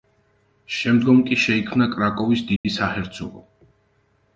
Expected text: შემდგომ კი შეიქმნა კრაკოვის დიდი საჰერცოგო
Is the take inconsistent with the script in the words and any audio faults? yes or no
yes